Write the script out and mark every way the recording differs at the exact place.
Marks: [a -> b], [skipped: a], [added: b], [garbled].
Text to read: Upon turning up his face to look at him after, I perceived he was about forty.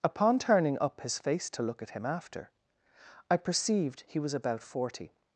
Upon turning up his face to look at him after, I perceived he was about forty.